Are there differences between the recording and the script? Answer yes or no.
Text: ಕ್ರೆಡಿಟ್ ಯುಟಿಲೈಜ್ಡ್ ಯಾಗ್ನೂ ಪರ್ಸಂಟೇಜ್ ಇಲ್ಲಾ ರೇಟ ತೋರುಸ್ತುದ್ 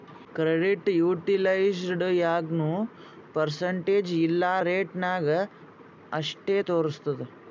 yes